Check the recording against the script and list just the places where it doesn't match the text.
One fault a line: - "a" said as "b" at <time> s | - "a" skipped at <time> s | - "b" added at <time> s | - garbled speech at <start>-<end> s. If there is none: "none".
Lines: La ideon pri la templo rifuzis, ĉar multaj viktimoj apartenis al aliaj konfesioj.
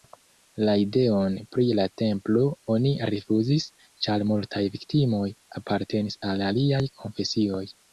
- "oni" added at 2.8 s